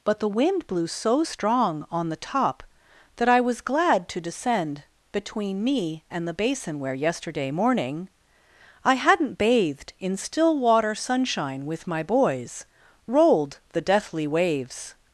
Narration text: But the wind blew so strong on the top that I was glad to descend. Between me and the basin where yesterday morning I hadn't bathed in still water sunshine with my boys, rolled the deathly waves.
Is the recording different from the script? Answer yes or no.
no